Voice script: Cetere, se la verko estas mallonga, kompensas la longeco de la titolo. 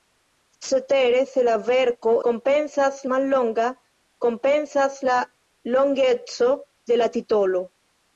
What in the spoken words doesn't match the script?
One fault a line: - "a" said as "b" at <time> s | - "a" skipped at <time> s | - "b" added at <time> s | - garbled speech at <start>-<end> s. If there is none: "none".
- "estas" said as "kompensas" at 2.3 s